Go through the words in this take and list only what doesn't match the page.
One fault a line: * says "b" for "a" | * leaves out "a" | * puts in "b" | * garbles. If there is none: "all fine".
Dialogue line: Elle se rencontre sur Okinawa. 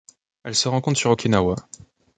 all fine